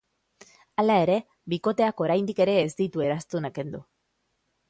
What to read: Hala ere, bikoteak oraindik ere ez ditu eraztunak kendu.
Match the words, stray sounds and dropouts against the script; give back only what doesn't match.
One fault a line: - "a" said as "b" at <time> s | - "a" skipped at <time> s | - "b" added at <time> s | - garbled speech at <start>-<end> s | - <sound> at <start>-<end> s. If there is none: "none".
none